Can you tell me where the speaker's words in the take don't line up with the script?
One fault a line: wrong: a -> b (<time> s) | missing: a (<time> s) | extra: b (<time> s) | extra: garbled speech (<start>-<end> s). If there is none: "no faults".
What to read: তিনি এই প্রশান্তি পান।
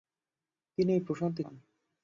no faults